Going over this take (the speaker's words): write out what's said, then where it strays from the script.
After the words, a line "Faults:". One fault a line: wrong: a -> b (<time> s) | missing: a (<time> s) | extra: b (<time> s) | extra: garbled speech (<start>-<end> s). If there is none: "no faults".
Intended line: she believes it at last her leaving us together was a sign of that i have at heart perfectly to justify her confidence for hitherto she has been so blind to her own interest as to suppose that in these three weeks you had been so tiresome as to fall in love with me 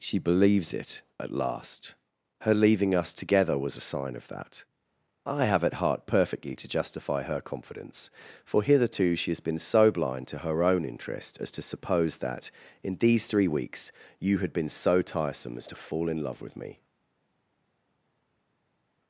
she believes it at last her leaving us together was a sign of that i have at heart perfectly to justify her confidence for hitherto she has been so blind to her own interest as to suppose that in these three weeks you had been so tiresome as to fall in love with me
Faults:
no faults